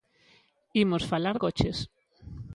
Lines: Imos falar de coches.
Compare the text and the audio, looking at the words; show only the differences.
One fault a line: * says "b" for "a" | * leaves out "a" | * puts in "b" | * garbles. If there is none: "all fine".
* leaves out "de"